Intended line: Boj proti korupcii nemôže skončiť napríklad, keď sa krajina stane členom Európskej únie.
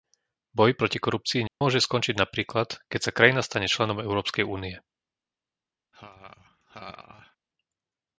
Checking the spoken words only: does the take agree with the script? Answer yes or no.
yes